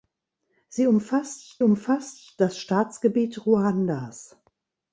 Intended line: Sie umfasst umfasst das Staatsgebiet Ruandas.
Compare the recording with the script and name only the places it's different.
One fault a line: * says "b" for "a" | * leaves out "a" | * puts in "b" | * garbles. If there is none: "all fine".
all fine